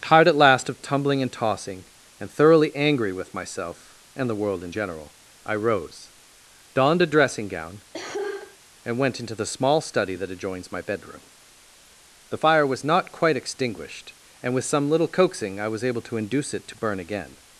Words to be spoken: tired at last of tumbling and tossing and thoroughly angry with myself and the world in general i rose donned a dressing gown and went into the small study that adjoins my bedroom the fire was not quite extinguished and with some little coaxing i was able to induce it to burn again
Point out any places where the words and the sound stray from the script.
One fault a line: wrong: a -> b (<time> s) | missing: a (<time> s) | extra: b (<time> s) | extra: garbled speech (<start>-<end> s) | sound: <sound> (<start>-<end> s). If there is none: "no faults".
sound: cough (7.9-8.6 s)